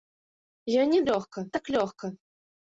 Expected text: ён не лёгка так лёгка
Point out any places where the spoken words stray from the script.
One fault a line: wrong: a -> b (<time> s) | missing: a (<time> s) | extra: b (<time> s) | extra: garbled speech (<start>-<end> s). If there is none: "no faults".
no faults